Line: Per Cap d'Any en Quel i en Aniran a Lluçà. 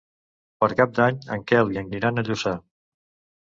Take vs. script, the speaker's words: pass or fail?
pass